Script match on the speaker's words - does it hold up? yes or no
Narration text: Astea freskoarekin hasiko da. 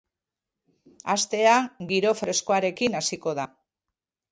no